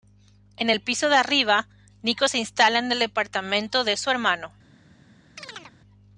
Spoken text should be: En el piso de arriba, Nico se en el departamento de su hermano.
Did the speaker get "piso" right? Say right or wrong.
right